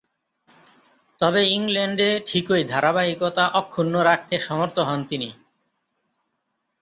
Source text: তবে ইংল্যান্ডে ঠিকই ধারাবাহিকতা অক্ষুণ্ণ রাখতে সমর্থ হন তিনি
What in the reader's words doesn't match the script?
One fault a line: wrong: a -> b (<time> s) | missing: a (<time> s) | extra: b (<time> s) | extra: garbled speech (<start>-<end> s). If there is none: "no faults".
no faults